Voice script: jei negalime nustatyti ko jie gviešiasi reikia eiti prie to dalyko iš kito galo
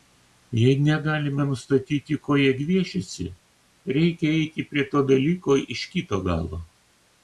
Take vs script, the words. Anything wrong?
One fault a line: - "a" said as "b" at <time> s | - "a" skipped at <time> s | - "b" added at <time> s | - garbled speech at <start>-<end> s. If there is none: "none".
none